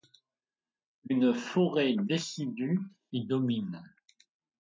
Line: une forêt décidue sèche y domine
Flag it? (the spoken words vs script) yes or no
yes